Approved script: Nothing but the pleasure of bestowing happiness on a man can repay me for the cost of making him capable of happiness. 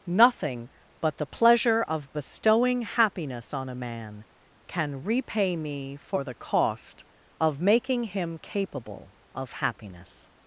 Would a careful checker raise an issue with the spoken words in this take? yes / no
no